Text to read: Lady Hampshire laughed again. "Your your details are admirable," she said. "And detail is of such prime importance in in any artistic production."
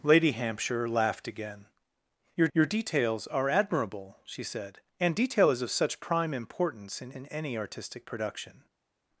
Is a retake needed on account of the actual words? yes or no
no